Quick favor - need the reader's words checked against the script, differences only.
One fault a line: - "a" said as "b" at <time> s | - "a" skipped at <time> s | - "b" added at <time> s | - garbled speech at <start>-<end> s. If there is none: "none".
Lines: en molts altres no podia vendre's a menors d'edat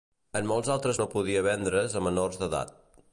none